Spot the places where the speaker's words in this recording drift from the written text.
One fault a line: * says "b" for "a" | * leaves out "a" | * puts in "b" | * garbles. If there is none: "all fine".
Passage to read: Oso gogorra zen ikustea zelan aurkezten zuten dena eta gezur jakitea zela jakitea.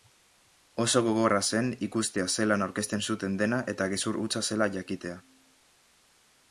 * says "hutsa" for "jakitea"